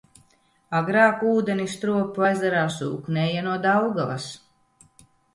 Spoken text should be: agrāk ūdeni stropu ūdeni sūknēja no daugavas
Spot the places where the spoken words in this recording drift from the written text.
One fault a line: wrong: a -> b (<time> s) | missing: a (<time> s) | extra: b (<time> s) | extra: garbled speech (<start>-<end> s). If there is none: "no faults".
wrong: ūdeni -> ezerā (2.3 s)